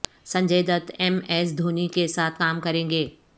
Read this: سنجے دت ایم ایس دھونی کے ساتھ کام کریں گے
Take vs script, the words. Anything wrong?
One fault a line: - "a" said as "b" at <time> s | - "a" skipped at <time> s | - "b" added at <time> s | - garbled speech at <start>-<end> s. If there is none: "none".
none